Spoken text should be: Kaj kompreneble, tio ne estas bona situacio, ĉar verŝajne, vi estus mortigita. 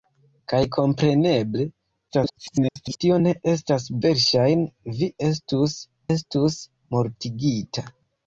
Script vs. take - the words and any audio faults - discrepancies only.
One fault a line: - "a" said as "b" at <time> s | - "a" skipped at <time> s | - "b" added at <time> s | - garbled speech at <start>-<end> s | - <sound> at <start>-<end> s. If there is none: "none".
- garbled speech at 2.1-3.0 s
- "bona situacio ĉar" skipped at 3.8 s
- "estus" added at 6.2 s